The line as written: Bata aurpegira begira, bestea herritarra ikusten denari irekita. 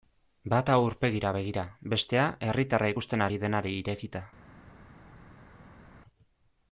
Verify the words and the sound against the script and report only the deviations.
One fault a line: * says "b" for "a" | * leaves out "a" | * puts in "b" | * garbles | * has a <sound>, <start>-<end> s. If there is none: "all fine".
* puts in "ari"